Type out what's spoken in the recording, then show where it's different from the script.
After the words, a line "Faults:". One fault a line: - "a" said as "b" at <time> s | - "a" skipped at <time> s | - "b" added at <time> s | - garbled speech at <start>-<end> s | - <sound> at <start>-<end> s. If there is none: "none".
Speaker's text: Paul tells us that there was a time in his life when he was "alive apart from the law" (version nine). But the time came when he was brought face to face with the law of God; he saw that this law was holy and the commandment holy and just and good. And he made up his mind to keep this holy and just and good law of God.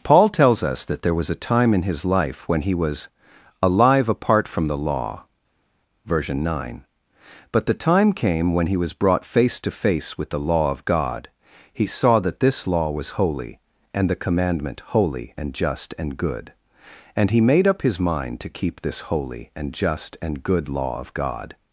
Paul tells us that there was a time in his life when he was "alive apart from the law" (version nine). But the time came when he was brought face to face with the law of God; he saw that this law was holy and the commandment holy and just and good. And he made up his mind to keep this holy and just and good law of God.
Faults:
none